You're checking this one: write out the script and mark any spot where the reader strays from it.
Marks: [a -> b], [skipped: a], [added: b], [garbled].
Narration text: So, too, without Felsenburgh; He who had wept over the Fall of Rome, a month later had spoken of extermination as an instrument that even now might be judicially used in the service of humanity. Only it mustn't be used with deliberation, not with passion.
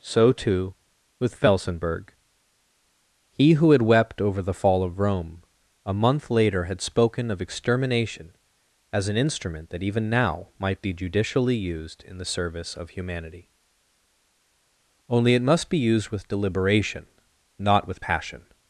So, too, [without -> with] Felsenburgh; He who had wept over the Fall of Rome, a month later had spoken of extermination as an instrument that even now might be judicially used in the service of humanity. Only it [mustn't -> must] be used with deliberation, not with passion.